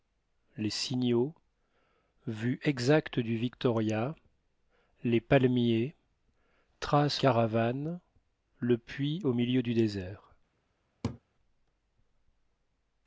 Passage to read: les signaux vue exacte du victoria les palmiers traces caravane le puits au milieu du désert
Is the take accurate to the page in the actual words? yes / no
yes